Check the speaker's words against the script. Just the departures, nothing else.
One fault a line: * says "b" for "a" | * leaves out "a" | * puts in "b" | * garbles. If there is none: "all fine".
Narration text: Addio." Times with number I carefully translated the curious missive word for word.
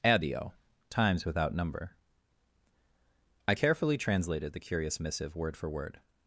* says "without" for "with"